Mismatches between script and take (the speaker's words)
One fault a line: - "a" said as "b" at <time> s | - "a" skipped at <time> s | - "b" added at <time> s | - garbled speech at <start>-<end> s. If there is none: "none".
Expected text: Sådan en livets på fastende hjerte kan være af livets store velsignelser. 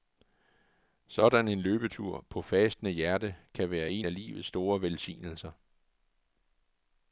- "livets" said as "løbetur" at 1.6 s
- "en" added at 3.9 s